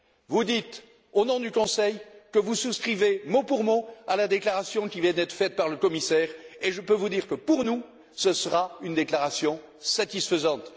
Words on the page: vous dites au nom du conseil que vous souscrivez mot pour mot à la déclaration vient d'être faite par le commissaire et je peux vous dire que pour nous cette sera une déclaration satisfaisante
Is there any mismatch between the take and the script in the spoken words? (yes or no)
yes